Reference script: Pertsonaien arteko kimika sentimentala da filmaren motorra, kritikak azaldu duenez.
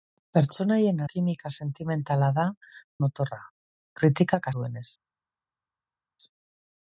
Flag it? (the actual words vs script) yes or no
yes